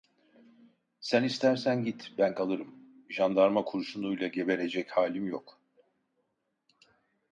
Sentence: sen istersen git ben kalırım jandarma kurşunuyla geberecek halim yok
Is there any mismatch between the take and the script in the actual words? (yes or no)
no